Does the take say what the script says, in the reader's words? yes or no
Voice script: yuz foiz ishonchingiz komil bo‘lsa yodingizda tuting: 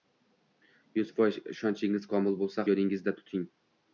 yes